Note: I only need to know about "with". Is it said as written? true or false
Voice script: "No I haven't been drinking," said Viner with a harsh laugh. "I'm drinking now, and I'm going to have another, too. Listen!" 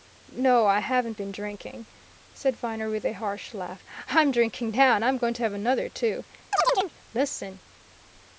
true